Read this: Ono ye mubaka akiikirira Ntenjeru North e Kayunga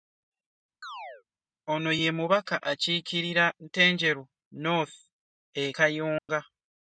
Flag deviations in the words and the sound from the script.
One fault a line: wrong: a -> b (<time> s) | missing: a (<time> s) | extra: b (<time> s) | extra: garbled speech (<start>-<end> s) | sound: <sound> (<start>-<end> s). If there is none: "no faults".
sound: chirp (0.8-1.2 s)
sound: dropout (6.2-6.3 s)